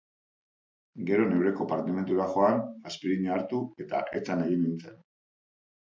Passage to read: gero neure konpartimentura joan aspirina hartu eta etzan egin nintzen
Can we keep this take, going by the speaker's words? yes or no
yes